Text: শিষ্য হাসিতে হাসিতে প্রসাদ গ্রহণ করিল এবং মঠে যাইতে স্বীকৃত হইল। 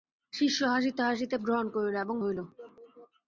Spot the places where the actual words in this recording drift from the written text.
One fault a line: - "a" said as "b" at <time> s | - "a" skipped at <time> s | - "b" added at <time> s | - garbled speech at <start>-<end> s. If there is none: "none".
- "প্রসাদ" skipped at 1.4 s
- "মঠে যাইতে স্বীকৃত" skipped at 2.2 s